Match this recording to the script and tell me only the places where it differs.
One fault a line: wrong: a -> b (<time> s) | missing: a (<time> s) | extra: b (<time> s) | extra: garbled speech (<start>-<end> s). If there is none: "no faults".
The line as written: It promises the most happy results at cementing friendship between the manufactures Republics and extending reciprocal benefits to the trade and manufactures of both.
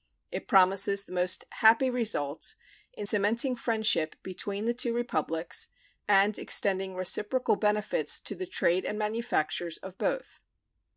wrong: at -> in (2.9 s)
wrong: manufactures -> two (4.7 s)